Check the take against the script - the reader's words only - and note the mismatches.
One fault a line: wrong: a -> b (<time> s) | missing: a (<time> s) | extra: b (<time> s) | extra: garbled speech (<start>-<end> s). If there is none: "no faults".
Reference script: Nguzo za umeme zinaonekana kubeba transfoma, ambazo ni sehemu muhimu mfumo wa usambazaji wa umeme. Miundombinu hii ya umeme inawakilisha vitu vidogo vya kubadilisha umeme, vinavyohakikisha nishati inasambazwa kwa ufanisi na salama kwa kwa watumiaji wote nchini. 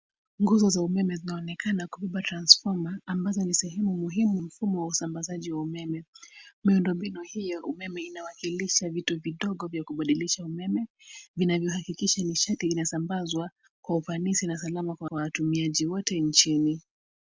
no faults